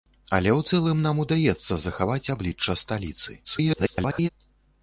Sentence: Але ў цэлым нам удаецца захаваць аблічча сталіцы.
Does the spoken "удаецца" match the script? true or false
true